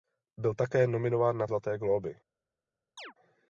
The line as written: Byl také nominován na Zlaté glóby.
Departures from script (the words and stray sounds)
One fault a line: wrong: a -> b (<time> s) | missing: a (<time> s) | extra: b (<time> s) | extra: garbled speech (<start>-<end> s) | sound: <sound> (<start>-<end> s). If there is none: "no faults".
sound: chirp (3.0-3.1 s)